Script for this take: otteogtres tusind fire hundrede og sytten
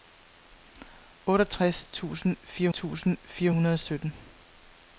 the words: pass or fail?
fail